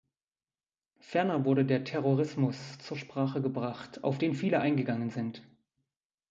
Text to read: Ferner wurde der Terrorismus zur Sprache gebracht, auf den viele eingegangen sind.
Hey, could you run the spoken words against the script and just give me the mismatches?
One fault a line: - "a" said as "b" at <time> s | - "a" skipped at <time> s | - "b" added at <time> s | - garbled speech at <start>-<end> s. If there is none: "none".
none